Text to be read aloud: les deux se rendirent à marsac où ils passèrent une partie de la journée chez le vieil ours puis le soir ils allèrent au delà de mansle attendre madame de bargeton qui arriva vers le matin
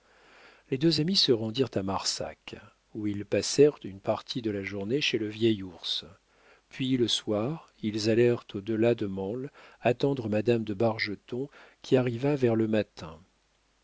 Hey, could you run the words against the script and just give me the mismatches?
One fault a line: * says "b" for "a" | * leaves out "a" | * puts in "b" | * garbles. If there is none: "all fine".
* puts in "amis"